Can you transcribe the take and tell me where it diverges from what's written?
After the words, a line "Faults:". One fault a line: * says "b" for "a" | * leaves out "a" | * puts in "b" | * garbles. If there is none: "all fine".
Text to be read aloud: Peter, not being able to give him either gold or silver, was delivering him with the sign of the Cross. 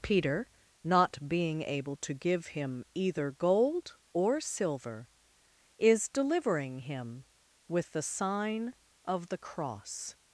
Peter, not being able to give him either gold or silver, is delivering him with the sign of the Cross.
Faults:
* says "is" for "was"